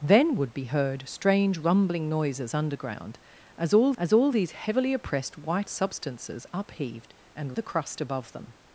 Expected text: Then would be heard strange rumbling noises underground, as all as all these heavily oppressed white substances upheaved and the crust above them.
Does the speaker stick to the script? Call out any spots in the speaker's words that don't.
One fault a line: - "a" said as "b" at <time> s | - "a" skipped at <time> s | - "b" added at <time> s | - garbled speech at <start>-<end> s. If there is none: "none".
none